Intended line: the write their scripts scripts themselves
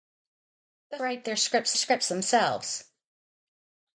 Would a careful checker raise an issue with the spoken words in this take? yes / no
no